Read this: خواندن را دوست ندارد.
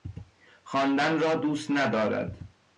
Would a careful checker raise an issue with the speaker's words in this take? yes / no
no